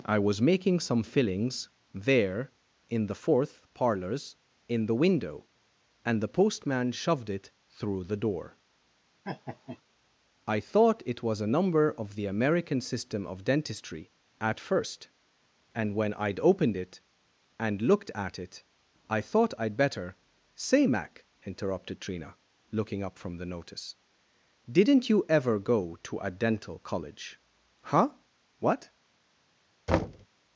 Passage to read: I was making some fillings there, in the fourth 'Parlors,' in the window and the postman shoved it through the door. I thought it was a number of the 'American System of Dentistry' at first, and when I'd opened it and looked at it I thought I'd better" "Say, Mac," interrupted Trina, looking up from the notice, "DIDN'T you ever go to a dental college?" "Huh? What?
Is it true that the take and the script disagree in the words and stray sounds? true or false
true